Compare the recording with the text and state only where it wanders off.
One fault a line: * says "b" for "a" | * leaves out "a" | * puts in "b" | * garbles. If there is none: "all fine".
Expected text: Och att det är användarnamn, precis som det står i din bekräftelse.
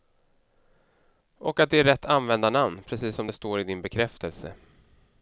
* puts in "rätt"